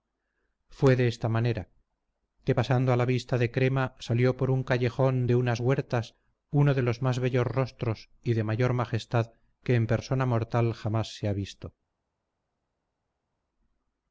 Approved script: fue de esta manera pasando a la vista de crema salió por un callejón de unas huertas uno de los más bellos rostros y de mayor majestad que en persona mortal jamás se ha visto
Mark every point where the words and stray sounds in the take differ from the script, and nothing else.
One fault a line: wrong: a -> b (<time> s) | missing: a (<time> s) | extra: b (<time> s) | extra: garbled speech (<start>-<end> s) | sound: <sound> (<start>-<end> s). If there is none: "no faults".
extra: que (2.4 s)